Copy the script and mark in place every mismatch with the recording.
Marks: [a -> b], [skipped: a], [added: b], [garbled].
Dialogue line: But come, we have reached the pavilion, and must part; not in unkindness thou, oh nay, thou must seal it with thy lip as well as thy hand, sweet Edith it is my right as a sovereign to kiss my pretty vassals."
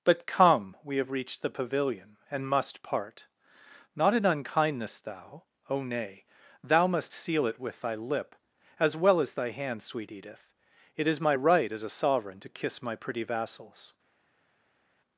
But come, we have reached the pavilion, and must part; not in unkindness thou, oh nay, thou must seal it with thy lip as well as thy hand, sweet Edith it is my right as a sovereign to kiss my pretty vassals."